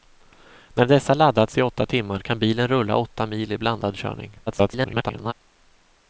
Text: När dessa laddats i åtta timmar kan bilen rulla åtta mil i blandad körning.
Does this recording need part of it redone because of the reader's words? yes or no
yes